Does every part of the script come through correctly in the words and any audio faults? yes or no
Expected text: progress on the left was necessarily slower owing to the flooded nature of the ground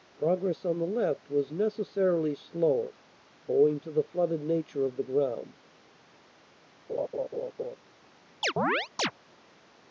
no